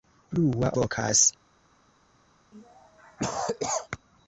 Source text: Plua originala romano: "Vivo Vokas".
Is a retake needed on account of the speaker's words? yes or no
yes